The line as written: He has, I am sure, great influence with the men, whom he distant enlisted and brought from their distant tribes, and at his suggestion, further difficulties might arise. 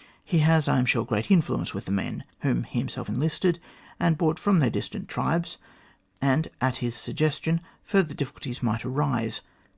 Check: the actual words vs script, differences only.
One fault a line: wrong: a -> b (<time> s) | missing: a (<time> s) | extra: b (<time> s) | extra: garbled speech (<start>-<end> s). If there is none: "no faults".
wrong: distant -> himself (2.8 s)